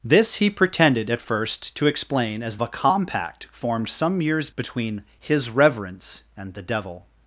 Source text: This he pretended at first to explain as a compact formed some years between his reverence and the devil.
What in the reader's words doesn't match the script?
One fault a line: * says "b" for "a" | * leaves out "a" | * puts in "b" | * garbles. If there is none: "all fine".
all fine